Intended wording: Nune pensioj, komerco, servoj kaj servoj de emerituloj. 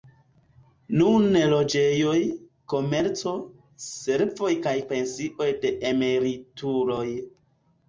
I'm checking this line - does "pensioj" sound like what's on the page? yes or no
no